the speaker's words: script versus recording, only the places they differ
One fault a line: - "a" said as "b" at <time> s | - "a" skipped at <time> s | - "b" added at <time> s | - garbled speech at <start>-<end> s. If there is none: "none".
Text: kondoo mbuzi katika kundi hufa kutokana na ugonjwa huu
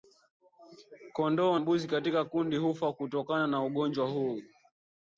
none